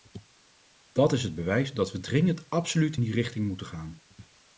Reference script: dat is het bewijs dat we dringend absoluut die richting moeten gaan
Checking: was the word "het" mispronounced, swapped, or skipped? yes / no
no